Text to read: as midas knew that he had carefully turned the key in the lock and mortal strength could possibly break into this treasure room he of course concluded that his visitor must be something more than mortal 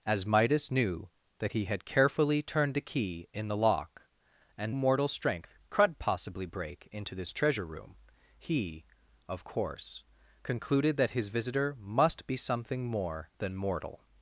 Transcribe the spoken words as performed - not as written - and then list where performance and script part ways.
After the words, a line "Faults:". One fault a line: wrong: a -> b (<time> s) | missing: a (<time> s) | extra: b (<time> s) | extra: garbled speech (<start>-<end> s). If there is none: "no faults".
as midas knew that he had carefully turned the key in the lock and mortal strength could possibly break into this treasure room he of course concluded that his visitor must be something more than mortal
Faults:
no faults